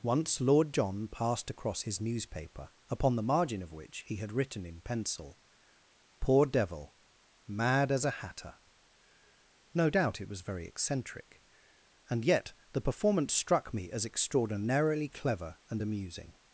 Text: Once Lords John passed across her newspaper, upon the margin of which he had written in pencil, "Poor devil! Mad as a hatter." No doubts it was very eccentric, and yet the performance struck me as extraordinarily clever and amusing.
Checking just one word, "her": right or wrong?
wrong